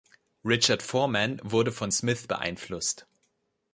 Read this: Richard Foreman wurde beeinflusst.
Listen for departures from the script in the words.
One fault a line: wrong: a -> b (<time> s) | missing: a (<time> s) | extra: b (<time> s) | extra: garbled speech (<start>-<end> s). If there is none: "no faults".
extra: von Smith (1.7 s)